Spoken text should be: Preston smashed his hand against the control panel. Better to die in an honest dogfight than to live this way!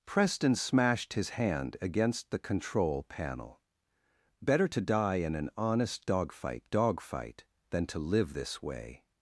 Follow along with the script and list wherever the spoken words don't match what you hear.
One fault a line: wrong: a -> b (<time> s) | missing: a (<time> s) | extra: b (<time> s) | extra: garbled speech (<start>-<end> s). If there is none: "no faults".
extra: dogfight (6.7 s)